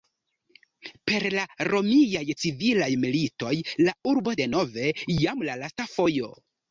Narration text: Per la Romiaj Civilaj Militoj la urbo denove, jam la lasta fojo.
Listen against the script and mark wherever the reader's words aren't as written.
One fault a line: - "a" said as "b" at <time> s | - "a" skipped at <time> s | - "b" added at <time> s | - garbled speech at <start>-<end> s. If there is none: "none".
none